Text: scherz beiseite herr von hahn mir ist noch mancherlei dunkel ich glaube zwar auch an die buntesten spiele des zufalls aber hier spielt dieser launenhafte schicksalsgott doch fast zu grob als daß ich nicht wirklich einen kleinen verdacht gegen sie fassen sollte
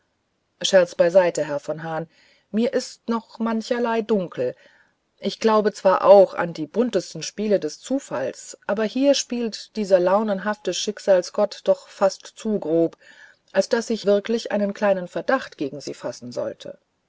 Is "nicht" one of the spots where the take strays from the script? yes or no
yes